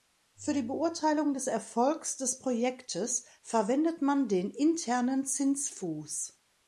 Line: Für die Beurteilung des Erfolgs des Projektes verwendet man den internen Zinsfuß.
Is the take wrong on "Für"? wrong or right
right